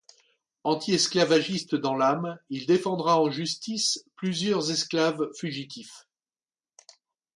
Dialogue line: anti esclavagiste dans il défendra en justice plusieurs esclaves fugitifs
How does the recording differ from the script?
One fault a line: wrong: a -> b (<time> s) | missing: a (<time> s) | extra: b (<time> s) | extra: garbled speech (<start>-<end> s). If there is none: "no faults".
extra: l'âme (1.9 s)